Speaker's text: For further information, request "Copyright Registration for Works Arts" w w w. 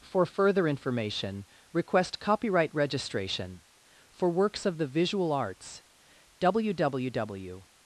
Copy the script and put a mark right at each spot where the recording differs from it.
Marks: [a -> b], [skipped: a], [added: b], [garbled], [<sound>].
For further information, request "Copyright Registration for Works [added: of the Visual] Arts" w w w.